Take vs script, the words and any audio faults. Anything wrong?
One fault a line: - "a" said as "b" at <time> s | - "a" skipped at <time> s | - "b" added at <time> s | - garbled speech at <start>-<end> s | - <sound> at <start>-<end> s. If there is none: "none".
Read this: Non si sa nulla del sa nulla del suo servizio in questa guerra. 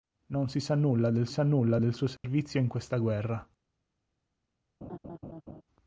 - dropout at 2.2-2.2 s
- laugh at 4.8-5.6 s